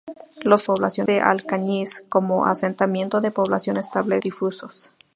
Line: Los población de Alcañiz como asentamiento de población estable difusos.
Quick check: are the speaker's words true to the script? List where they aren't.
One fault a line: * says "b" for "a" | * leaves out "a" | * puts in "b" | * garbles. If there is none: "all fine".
all fine